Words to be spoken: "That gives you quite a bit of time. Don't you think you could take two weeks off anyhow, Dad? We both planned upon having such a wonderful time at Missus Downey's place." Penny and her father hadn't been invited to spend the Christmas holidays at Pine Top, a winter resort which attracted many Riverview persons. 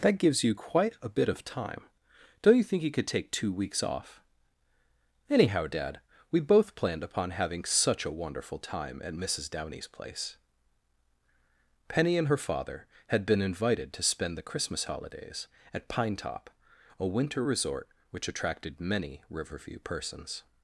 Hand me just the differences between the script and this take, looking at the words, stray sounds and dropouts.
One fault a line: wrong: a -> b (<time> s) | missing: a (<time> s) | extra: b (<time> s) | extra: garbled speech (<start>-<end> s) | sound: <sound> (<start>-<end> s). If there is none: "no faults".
wrong: hadn't -> had (13.1 s)